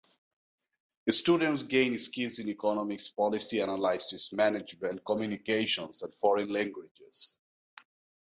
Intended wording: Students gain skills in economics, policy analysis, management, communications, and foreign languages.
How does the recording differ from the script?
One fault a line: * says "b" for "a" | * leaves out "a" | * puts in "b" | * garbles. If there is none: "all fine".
all fine